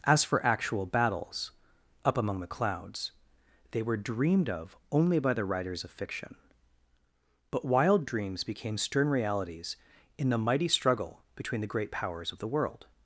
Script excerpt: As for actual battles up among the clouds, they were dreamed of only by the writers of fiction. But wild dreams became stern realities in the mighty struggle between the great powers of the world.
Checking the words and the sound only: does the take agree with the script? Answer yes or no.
yes